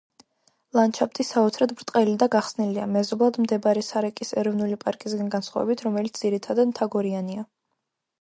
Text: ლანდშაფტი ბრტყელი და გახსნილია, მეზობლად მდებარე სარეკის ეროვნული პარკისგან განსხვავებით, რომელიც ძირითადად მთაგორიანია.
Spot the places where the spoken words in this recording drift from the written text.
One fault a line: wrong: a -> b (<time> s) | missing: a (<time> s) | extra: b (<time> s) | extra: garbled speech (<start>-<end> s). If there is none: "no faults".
extra: საოცრად (1.2 s)